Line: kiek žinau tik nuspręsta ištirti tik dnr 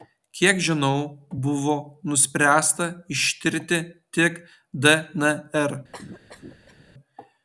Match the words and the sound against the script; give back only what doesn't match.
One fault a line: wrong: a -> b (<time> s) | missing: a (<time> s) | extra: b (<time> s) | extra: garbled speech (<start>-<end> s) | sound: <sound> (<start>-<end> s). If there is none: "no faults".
wrong: tik -> buvo (1.4 s)
sound: cough (5.9-6.9 s)